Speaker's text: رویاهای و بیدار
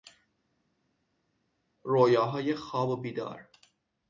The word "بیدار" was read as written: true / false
true